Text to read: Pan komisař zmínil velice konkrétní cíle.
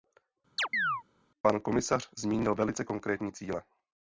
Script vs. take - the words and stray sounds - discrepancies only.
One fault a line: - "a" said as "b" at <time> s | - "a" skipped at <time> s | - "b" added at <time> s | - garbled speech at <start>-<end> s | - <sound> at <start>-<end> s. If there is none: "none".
- chirp at 0.6-1.0 s